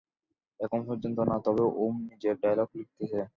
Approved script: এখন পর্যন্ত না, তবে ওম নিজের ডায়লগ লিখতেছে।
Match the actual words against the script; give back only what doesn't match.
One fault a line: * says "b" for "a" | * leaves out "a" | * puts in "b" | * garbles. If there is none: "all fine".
all fine